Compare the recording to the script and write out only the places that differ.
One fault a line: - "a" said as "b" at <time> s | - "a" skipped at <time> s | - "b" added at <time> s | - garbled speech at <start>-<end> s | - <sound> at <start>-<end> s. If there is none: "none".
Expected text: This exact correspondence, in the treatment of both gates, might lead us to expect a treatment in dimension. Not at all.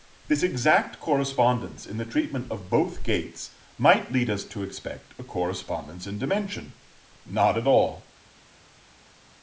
- "treatment" said as "correspondence" at 5.2 s